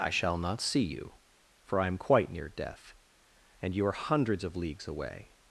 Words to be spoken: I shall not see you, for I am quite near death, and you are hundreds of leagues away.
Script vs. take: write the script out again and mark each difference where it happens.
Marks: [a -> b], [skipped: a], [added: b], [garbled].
I shall not see you, for I am quite near death, and you are hundreds of leagues away.